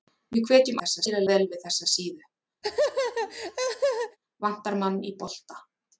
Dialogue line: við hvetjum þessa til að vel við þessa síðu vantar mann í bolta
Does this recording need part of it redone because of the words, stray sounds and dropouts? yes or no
yes